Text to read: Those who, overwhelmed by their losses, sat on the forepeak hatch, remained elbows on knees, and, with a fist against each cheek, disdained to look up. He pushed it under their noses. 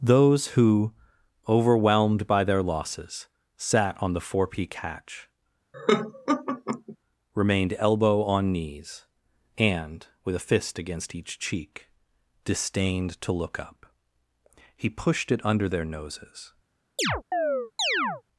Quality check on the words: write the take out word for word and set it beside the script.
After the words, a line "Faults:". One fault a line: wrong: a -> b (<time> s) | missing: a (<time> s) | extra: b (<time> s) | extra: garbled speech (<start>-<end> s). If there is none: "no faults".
Those who, overwhelmed by their losses, sat on the forepeak hatch, remained elbow on knees, and, with a fist against each cheek, disdained to look up. He pushed it under their noses.
Faults:
wrong: elbows -> elbow (7.8 s)